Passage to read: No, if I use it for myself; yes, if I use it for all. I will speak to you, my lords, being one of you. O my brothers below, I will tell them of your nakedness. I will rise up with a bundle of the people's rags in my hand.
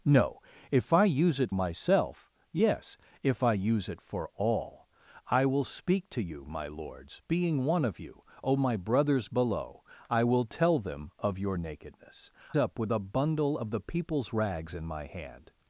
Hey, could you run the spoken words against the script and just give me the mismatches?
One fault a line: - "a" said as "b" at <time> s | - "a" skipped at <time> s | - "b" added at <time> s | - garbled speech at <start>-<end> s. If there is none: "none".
- "for" skipped at 1.5 s
- "I will rise" skipped at 12.3 s